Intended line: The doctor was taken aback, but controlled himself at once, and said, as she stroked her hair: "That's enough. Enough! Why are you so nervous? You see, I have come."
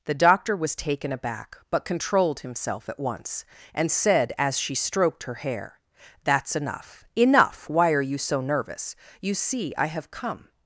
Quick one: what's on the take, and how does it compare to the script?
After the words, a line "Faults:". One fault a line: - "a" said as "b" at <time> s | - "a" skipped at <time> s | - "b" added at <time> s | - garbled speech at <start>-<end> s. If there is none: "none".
The doctor was taken aback, but controlled himself at once, and said, as she stroked her hair: "That's enough. Enough! Why are you so nervous? You see, I have come."
Faults:
none